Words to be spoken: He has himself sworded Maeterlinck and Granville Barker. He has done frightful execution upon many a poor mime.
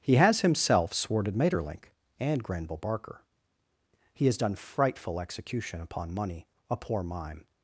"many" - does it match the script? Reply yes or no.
no